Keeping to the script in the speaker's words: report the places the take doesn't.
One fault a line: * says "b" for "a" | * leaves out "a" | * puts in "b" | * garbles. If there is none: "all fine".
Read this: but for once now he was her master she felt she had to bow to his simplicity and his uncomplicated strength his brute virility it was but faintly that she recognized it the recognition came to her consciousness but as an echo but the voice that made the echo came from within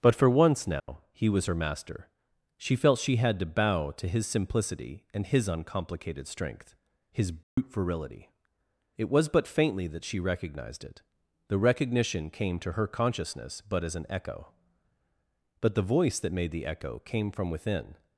all fine